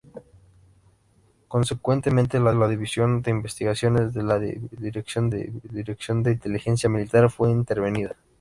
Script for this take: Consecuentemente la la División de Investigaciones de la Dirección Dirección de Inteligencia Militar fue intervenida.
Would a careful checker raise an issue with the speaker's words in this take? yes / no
no